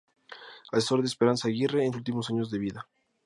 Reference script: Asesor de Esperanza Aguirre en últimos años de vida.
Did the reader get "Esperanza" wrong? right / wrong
right